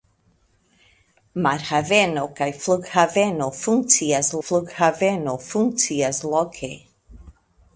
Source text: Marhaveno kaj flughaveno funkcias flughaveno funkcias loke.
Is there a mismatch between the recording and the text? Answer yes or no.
no